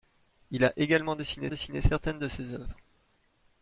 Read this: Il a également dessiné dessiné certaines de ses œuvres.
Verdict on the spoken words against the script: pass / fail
pass